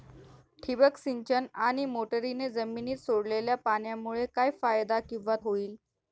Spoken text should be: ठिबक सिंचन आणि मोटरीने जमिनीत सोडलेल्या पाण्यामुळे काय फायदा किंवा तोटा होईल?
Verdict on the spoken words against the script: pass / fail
fail